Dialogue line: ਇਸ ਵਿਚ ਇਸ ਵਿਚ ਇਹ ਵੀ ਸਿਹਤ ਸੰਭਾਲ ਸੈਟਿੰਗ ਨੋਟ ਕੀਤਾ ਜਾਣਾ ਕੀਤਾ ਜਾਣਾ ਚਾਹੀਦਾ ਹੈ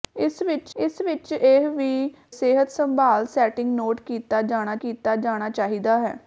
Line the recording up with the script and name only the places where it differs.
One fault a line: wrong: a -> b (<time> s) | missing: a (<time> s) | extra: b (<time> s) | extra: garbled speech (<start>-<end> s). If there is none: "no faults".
no faults